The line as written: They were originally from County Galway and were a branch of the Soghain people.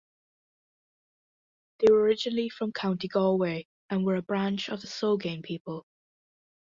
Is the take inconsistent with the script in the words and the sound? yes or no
no